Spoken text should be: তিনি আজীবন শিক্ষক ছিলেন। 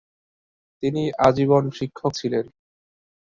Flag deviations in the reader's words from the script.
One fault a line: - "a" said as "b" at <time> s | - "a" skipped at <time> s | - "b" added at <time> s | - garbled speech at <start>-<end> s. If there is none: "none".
none